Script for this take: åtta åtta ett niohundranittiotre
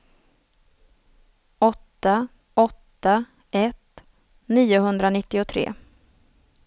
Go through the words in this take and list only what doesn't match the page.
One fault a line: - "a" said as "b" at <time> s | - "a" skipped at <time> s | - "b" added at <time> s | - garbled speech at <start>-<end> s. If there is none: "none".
none